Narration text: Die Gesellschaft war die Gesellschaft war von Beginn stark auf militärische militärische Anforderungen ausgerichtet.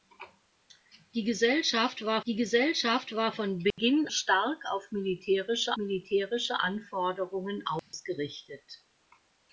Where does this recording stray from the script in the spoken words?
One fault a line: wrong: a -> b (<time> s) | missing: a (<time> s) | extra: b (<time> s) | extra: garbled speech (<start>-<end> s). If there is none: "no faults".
no faults